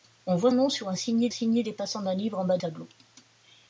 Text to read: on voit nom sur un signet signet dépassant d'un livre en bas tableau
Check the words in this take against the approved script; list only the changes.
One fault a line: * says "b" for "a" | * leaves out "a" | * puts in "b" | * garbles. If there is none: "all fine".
all fine